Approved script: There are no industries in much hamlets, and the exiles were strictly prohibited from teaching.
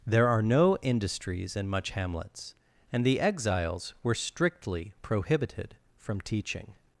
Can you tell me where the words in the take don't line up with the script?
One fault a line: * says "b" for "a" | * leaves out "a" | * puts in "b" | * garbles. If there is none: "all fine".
all fine